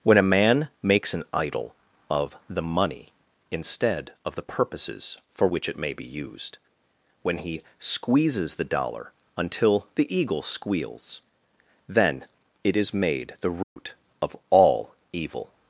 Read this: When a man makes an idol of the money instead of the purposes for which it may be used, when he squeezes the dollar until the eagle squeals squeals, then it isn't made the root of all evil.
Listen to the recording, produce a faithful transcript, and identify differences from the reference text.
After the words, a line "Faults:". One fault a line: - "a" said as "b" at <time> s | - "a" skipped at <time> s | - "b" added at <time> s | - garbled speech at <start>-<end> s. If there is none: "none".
When a man makes an idol of the money instead of the purposes for which it may be used, when he squeezes the dollar until the eagle squeals, then it is made the root of all evil.
Faults:
- "squeals" skipped at 11.2 s
- "isn't" said as "is" at 12.8 s